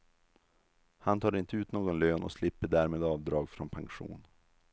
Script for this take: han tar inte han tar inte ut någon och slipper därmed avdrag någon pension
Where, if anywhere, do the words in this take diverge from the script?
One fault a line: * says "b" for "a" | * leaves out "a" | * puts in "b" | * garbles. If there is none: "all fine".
* leaves out "han tar inte"
* puts in "lön"
* says "från" for "någon"